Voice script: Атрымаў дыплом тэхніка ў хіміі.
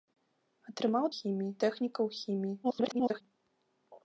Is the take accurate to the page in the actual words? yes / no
no